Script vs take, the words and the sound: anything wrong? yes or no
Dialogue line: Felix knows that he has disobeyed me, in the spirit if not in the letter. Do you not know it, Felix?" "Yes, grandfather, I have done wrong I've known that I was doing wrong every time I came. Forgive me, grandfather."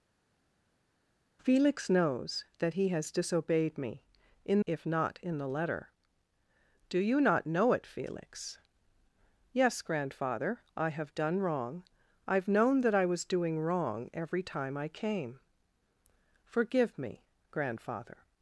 yes